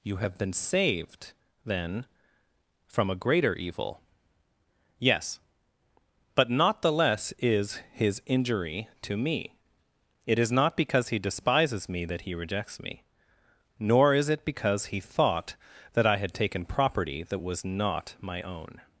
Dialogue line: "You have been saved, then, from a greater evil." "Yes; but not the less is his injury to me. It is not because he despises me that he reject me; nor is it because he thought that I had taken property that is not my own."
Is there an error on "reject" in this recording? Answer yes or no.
yes